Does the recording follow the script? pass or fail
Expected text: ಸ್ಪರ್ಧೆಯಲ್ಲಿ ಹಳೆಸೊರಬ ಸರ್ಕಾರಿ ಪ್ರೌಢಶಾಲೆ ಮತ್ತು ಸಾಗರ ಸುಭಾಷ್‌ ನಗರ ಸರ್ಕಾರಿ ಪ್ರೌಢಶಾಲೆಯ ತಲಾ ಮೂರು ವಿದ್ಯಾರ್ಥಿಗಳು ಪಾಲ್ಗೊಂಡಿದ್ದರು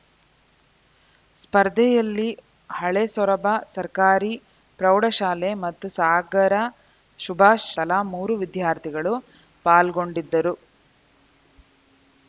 fail